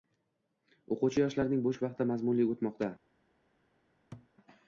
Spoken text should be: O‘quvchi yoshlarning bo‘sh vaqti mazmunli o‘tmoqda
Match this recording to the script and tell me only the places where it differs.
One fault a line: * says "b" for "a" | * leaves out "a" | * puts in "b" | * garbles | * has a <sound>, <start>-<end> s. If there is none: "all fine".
* has a thud, 4.1-4.3 s